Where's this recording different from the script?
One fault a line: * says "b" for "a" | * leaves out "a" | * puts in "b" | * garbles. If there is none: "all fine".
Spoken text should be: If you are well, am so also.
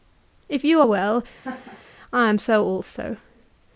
* puts in "I"